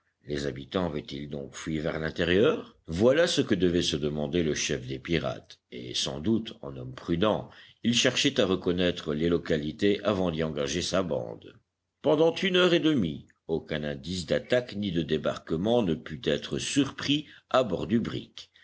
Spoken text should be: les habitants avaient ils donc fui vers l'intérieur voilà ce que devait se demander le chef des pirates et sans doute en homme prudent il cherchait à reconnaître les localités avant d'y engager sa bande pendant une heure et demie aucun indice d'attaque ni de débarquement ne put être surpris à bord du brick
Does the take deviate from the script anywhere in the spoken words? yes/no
no